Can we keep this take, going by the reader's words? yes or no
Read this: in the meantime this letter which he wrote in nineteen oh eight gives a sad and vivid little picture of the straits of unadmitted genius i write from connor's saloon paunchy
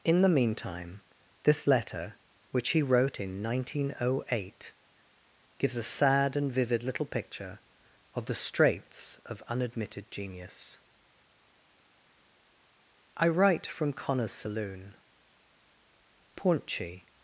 yes